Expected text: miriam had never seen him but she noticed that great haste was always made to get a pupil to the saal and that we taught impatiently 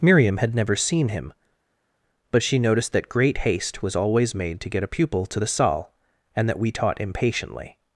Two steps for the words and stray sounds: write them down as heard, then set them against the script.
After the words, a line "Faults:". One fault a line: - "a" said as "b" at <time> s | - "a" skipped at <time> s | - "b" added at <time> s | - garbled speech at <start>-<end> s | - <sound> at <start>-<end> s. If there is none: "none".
miriam had never seen him but she noticed that great haste was always made to get a pupil to the saal and that we taught impatiently
Faults:
none